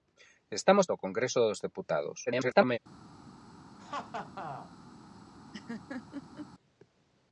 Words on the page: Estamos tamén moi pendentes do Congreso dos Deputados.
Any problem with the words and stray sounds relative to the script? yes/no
yes